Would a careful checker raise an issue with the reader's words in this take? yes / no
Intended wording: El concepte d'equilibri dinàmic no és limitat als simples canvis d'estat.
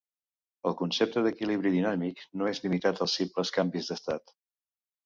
no